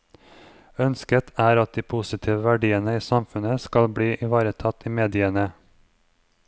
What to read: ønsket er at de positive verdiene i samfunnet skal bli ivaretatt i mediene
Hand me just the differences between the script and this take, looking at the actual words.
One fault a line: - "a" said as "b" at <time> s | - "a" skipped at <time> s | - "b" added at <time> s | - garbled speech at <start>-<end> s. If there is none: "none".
none